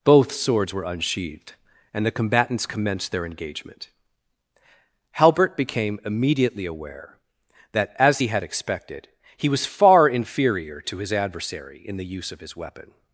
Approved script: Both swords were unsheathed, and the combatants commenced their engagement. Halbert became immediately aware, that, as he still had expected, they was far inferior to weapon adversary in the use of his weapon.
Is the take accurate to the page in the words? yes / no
no